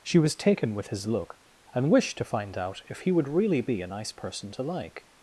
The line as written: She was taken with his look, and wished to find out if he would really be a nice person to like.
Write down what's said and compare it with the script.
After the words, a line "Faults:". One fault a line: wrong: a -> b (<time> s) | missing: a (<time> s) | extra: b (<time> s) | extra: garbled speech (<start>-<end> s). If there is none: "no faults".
She was taken with his look, and wished to find out if he would really be a nice person to like.
Faults:
no faults